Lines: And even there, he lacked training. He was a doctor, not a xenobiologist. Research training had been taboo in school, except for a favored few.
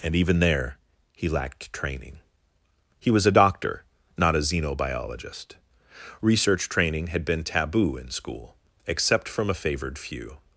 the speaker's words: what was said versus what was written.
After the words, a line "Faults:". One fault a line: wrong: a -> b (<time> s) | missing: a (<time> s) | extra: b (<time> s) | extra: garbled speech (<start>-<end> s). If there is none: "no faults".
And even there, he lacked training. He was a doctor, not a xenobiologist. Research training had been taboo in school, except from a favored few.
Faults:
wrong: for -> from (9.3 s)